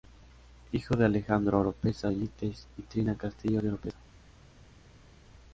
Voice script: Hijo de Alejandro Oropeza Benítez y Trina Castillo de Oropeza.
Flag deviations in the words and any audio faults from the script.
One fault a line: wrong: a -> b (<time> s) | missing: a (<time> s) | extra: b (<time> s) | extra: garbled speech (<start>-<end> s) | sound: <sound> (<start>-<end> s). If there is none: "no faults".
no faults